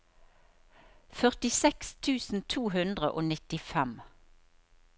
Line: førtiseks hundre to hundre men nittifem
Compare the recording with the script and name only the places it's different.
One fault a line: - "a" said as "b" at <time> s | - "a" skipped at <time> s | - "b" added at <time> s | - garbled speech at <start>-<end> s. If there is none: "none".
- "hundre" said as "tusen" at 2.1 s
- "men" said as "og" at 3.1 s